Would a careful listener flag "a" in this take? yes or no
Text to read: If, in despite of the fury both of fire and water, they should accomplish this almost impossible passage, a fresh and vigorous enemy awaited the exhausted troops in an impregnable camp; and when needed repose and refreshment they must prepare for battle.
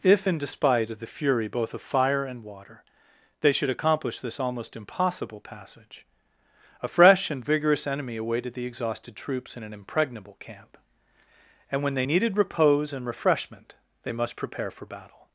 no